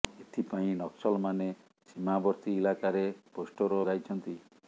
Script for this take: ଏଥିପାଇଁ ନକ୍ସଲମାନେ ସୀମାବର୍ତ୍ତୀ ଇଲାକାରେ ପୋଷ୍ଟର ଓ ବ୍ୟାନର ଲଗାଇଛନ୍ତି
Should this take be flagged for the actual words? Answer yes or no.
yes